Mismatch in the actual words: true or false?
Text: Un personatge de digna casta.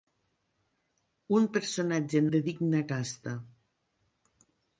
false